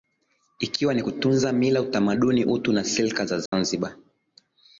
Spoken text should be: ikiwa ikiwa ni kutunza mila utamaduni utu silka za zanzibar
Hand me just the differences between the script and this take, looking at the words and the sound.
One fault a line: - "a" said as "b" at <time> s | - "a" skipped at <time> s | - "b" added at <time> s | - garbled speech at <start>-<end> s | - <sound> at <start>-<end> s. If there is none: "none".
- "ikiwa" skipped at 0.9 s
- "na" added at 2.7 s
- dropout at 3.5-3.5 s